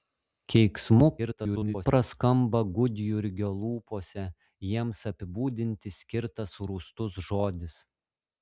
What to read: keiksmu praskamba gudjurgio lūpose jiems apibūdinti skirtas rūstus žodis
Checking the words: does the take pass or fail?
fail